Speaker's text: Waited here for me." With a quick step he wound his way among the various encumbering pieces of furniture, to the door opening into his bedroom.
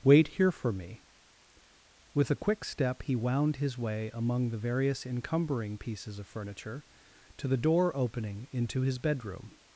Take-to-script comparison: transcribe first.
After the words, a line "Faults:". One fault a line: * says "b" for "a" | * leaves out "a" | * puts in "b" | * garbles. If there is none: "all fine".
Wait here for me." With a quick step he wound his way among the various encumbering pieces of furniture, to the door opening into his bedroom.
Faults:
* says "Wait" for "Waited"